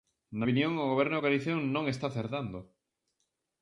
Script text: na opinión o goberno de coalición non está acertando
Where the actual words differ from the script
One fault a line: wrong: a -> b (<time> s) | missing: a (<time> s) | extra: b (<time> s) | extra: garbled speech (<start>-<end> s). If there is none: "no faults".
no faults